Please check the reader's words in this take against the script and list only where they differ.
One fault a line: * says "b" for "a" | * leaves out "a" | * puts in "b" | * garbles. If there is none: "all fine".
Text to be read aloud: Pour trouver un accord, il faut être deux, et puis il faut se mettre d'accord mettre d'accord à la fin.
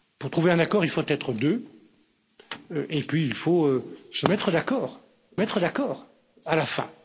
all fine